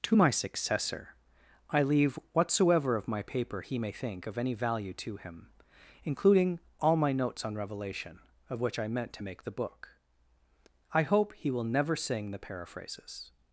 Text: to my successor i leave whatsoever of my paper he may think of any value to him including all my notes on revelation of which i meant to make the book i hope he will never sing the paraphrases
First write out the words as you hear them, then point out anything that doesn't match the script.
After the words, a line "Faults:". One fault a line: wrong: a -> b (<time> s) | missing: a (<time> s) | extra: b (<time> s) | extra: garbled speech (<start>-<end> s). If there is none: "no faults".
to my successor i leave whatsoever of my paper he may think of any value to him including all my notes on revelation of which i meant to make the book i hope he will never sing the paraphrases
Faults:
no faults